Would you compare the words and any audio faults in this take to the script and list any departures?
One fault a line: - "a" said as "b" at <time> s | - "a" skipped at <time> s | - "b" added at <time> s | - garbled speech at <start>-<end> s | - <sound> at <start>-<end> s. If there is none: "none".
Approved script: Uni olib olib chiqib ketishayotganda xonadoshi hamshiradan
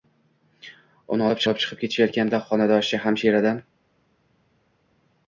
none